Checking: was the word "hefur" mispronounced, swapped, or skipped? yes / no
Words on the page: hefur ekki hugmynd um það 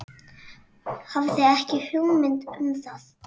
yes